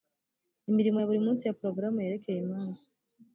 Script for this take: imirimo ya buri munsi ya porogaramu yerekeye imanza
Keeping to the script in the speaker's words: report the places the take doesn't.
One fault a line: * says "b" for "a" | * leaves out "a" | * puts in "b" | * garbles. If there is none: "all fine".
all fine